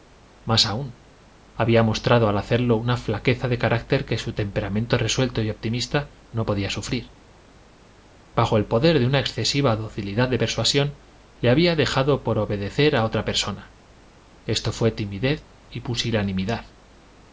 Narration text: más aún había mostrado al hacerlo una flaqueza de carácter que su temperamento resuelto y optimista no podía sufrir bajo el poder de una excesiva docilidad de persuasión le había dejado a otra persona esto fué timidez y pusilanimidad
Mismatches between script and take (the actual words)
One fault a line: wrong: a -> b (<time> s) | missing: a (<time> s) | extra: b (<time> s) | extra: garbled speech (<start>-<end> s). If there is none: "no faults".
extra: por obedecer (12.2 s)